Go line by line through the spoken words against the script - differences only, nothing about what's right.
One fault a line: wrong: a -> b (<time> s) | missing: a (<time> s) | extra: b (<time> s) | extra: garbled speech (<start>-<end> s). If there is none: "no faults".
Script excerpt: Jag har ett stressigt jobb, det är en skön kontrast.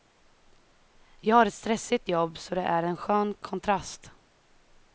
extra: så (2.4 s)